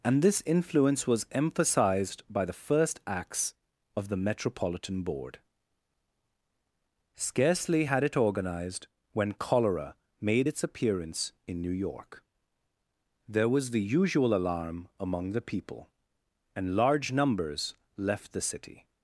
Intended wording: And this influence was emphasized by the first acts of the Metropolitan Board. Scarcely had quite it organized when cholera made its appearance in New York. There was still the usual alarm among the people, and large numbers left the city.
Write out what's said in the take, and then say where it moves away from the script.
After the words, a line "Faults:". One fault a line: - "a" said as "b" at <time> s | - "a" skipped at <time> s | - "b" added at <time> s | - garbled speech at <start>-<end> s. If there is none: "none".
And this influence was emphasized by the first acts of the Metropolitan Board. Scarcely had it organized when cholera made its appearance in New York. There was the usual alarm among the people, and large numbers left the city.
Faults:
- "quite" skipped at 8.0 s
- "still" skipped at 13.7 s